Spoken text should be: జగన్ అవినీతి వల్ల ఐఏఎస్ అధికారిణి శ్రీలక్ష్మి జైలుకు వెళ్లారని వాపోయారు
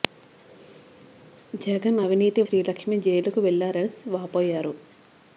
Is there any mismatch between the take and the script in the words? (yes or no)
yes